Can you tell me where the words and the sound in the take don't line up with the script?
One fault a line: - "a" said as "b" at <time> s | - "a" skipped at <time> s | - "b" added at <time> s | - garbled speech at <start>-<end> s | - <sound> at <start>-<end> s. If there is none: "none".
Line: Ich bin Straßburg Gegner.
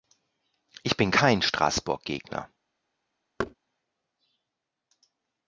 - "kein" added at 1.1 s
- thud at 3.4-3.5 s